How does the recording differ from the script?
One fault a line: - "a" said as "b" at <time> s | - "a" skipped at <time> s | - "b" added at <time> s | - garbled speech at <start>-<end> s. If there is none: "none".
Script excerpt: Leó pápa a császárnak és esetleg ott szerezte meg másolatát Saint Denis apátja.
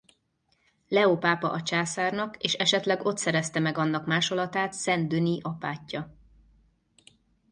- "annak" added at 3.8 s